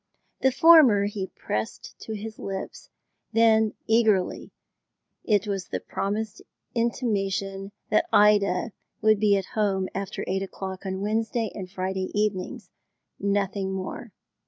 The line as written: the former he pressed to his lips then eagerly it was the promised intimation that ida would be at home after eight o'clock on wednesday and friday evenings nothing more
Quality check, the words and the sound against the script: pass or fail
pass